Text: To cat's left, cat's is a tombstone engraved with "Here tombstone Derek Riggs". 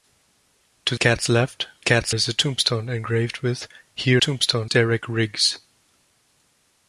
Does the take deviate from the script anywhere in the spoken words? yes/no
no